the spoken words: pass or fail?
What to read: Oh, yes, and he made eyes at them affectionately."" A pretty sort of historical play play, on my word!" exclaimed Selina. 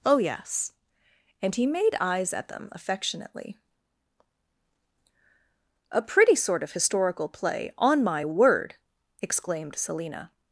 fail